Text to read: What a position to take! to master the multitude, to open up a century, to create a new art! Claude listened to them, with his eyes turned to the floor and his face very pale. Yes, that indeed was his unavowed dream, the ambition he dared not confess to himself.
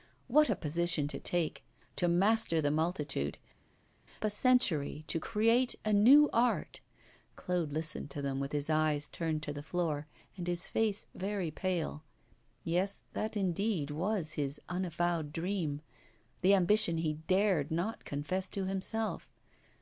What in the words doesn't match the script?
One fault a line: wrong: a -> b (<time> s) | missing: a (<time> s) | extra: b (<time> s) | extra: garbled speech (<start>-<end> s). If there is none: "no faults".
missing: to open up (3.4 s)